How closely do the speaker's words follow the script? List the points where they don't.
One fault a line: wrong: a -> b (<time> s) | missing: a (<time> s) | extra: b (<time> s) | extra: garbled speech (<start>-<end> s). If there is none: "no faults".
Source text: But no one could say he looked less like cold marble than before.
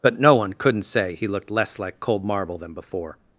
wrong: could -> couldn't (0.5 s)